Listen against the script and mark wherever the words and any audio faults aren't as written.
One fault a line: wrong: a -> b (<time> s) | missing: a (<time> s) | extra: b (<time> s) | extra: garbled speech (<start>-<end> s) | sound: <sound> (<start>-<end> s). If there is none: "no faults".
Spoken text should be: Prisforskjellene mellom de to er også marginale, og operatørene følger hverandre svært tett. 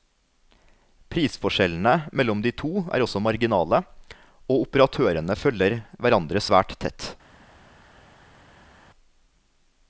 no faults